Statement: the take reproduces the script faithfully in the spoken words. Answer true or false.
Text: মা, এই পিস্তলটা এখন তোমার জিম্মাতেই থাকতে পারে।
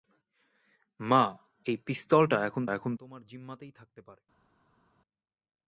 false